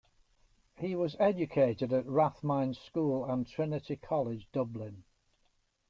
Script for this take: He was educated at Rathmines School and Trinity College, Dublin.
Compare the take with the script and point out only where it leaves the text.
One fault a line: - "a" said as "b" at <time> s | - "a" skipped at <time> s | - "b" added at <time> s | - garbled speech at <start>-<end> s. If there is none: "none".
none